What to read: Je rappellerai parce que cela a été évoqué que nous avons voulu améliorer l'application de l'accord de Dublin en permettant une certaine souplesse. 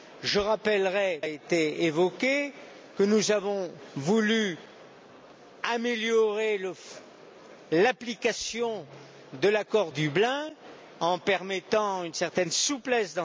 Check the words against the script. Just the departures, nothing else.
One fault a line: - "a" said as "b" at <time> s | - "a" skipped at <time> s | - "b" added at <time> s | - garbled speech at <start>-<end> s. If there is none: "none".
- "parce que cela" skipped at 1.2 s
- "de" skipped at 9.9 s